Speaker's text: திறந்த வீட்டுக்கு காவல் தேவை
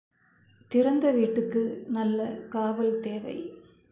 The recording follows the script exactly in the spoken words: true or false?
false